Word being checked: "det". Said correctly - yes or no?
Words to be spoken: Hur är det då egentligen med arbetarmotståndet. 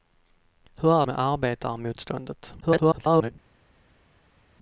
no